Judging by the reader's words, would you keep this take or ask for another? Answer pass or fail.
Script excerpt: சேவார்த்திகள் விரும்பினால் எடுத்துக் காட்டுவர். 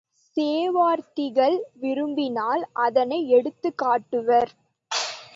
fail